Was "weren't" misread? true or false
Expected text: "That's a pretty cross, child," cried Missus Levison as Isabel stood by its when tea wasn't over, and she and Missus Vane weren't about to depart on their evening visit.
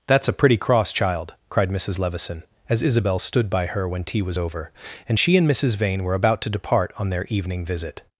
true